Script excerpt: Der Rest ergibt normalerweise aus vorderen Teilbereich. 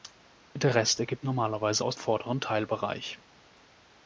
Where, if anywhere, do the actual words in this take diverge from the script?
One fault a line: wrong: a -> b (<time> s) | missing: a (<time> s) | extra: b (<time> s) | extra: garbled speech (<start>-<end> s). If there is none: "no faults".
no faults